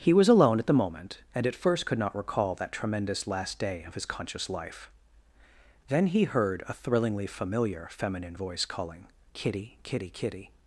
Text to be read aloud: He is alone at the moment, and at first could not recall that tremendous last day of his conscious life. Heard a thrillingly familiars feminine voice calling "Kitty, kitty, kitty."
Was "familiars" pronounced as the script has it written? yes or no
no